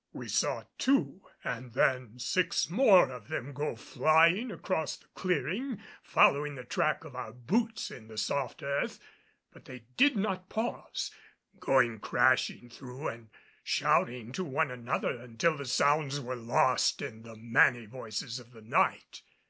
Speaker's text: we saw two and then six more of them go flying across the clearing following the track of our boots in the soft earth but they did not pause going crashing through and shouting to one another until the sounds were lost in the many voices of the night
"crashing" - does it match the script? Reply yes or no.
yes